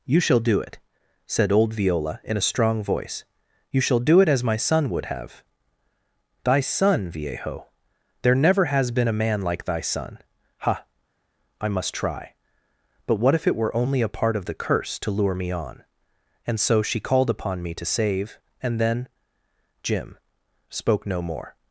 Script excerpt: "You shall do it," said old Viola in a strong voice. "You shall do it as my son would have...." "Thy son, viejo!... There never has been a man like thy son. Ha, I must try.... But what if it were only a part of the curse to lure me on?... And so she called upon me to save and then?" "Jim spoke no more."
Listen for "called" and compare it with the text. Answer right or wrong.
right